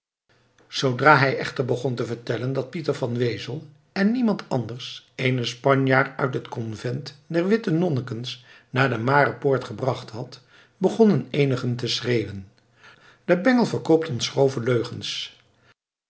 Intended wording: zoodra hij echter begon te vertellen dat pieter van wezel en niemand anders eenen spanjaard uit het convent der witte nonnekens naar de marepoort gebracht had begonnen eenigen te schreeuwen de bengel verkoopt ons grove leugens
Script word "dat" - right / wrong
right